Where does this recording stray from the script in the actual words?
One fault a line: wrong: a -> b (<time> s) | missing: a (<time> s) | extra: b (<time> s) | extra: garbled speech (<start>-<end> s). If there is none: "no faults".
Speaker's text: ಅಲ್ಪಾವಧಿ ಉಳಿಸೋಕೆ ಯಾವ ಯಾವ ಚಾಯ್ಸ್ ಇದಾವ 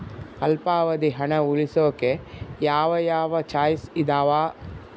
extra: ಹಣ (1.1 s)